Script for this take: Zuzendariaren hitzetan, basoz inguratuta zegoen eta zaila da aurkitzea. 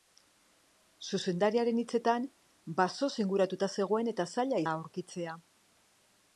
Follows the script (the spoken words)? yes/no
yes